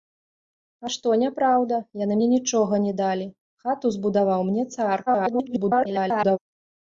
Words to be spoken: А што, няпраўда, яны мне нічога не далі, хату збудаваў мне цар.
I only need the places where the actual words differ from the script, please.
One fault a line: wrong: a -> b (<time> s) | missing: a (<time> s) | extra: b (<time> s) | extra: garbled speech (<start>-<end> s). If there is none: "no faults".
extra: garbled speech (5.1-6.4 s)